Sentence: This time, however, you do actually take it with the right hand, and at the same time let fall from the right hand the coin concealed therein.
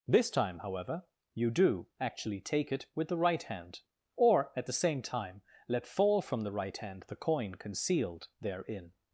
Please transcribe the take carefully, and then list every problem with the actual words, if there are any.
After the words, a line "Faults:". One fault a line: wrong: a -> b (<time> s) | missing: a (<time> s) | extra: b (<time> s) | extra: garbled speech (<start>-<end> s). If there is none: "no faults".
This time, however, you do actually take it with the right hand, or at the same time let fall from the right hand the coin concealed therein.
Faults:
wrong: and -> or (4.2 s)